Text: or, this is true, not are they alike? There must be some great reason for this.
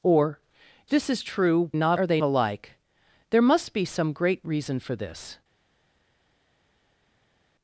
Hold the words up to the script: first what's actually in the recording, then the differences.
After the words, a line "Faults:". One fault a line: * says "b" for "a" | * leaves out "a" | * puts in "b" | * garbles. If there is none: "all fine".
or, this is true, not are they alike? There must be some great reason for this.
Faults:
all fine